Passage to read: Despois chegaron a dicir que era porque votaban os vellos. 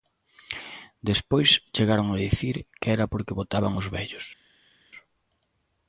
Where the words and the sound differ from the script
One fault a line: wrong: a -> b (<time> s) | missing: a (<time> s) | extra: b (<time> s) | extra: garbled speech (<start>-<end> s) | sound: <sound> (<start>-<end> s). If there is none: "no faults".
no faults